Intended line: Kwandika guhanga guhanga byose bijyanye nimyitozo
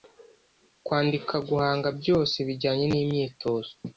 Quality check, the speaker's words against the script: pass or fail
fail